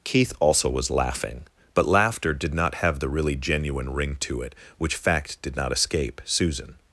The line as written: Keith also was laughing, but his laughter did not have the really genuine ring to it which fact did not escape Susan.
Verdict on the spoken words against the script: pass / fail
fail